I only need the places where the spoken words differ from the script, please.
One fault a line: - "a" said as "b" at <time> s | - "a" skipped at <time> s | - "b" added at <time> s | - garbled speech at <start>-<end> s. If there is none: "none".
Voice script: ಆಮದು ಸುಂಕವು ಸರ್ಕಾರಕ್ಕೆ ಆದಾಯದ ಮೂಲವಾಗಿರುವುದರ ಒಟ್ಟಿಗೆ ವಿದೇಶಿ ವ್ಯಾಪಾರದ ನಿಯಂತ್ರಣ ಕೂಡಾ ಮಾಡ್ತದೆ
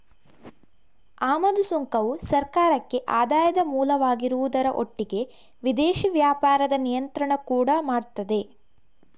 none